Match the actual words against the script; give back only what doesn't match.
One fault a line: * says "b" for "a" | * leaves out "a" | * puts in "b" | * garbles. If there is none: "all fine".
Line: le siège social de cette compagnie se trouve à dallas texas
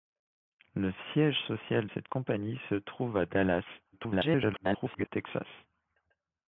* leaves out "de"
* garbles